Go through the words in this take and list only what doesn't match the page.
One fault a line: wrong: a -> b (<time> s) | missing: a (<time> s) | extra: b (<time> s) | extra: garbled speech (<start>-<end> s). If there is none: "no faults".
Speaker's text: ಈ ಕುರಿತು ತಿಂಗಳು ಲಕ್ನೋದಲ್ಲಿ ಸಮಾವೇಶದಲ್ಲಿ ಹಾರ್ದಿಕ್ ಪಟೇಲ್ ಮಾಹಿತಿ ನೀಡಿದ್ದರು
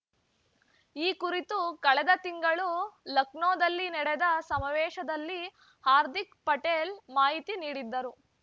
extra: ಕಳೆದ (1.8 s)
extra: ನಡೆದ (3.9 s)